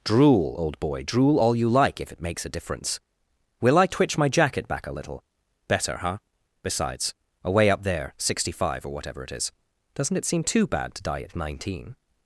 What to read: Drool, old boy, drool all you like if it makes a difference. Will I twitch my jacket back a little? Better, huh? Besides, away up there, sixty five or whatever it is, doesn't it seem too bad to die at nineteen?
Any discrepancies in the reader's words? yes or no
no